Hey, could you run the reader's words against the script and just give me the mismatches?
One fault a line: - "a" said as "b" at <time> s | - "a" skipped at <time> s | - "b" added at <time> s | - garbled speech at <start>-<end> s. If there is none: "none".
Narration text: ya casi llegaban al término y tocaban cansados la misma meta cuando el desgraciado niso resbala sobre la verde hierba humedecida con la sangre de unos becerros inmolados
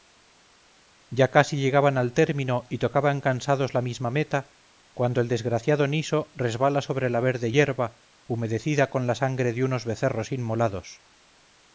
none